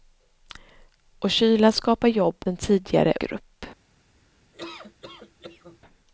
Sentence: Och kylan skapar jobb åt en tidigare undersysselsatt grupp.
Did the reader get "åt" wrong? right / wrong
wrong